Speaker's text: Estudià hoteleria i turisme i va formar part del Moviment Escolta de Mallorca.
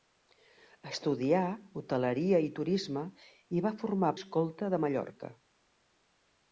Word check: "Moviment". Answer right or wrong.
wrong